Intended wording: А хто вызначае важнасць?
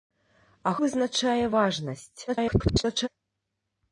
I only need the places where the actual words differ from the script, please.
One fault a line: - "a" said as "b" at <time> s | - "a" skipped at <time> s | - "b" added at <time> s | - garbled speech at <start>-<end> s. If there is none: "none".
- "хто" skipped at 0.7 s
- garbled speech at 2.3-3.1 s